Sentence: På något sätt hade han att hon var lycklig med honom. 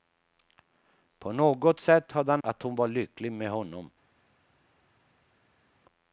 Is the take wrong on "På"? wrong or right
right